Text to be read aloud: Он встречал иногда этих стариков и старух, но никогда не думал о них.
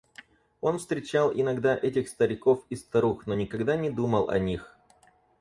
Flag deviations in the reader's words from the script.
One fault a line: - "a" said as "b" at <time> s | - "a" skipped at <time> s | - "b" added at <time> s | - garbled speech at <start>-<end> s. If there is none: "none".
none